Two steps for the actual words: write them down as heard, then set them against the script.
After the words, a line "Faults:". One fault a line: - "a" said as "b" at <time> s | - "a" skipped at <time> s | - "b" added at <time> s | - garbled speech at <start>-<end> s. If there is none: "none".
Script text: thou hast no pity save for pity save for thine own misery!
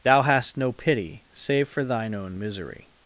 thou hast no pity save for thine own misery!
Faults:
- "pity save for" skipped at 1.8 s